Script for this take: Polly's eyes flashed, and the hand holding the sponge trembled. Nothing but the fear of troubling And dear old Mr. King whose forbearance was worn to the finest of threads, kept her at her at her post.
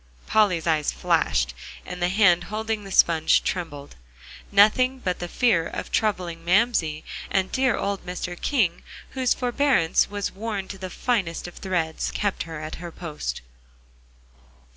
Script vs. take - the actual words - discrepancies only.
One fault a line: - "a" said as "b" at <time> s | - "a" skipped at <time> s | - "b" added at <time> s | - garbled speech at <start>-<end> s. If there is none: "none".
- "Mamsie" added at 6.4 s
- "at her" skipped at 12.9 s